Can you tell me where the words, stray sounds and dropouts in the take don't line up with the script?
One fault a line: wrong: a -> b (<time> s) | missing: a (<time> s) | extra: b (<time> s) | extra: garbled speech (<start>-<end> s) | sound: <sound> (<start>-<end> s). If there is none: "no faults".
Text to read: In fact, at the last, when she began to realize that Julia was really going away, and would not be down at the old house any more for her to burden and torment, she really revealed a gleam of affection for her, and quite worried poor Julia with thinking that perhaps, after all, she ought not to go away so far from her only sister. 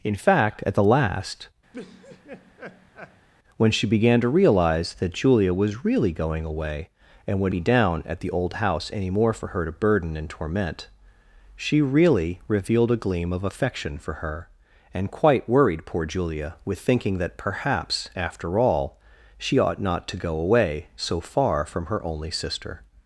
sound: laugh (1.7-3.3 s)
missing: not (7.5 s)